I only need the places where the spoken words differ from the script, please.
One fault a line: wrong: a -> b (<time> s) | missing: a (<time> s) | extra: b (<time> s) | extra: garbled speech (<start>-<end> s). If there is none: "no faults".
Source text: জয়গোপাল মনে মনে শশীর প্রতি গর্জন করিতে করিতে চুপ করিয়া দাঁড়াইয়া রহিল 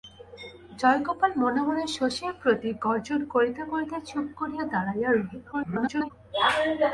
extra: garbled speech (5.5-6.1 s)